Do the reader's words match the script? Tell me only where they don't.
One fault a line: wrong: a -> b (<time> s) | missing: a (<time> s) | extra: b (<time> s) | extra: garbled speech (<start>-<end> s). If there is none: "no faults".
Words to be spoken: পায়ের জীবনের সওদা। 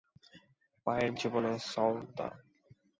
no faults